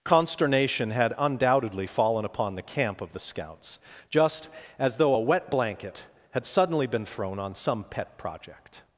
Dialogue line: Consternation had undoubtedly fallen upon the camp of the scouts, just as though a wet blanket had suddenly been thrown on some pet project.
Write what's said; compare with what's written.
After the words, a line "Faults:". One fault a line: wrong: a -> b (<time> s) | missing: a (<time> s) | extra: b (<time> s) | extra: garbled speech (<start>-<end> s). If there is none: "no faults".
Consternation had undoubtedly fallen upon the camp of the scouts, just as though a wet blanket had suddenly been thrown on some pet project.
Faults:
no faults